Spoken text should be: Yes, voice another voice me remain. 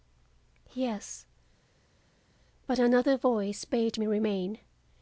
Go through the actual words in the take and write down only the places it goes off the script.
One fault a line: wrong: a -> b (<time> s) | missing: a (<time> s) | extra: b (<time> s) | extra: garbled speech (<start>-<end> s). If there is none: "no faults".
wrong: voice -> but (2.7 s)
extra: bade (3.7 s)